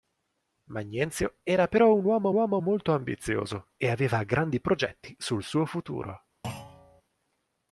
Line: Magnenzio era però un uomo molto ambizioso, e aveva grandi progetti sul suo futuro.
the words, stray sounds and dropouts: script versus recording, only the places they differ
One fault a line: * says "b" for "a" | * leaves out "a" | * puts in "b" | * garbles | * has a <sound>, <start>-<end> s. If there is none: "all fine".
* puts in "uomo"
* has a thud, 6.4-7.0 s